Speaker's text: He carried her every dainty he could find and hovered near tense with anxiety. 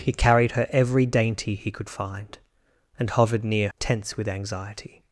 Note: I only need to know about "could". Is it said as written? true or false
true